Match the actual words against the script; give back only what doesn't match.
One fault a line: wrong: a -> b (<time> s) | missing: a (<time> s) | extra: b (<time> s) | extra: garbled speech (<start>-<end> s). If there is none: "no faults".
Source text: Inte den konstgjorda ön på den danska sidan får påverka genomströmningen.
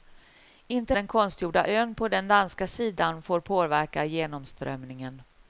no faults